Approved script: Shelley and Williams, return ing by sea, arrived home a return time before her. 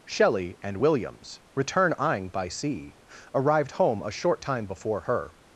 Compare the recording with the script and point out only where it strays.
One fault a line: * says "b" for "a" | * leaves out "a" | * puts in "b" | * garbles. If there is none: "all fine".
* says "short" for "return"